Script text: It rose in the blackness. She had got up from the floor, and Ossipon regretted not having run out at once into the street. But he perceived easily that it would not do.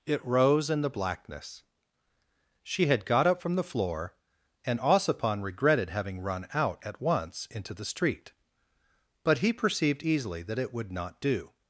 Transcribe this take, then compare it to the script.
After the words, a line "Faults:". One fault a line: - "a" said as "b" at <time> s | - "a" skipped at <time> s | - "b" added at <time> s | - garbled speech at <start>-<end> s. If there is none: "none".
It rose in the blackness. She had got up from the floor, and Ossipon regretted having run out at once into the street. But he perceived easily that it would not do.
Faults:
- "not" skipped at 5.9 s